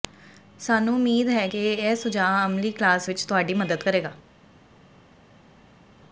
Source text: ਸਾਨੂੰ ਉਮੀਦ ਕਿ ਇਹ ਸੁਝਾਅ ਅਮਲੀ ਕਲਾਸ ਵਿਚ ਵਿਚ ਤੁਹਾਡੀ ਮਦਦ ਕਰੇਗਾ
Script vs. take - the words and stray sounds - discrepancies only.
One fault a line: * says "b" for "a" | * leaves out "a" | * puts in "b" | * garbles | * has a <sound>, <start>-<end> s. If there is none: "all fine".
* puts in "ਹੈ"
* leaves out "ਵਿਚ"